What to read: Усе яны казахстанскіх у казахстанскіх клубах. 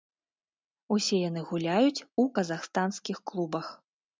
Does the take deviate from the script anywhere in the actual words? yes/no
yes